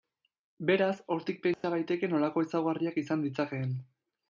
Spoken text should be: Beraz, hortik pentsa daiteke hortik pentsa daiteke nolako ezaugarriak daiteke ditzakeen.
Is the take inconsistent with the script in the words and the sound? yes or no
yes